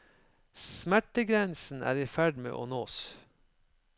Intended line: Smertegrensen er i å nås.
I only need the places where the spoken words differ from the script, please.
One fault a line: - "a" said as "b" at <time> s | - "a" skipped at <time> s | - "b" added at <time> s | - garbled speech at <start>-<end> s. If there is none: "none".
- "ferd med" added at 2.1 s